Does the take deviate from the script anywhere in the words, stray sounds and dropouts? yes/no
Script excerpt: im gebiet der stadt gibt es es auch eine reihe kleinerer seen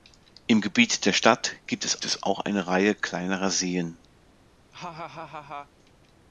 yes